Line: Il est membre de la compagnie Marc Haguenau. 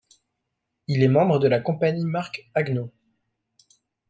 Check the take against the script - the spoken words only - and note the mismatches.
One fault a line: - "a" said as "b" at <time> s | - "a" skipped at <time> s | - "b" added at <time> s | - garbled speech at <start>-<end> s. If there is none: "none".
none